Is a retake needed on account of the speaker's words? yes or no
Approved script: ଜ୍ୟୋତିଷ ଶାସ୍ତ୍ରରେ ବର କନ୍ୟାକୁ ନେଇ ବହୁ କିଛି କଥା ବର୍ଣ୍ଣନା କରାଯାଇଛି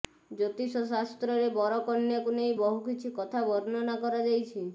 no